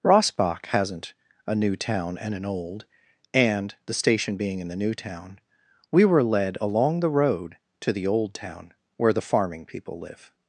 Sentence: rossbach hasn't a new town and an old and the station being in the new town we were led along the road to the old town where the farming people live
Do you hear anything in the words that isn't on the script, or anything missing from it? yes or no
no